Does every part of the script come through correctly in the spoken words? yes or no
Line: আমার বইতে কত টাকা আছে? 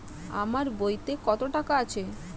yes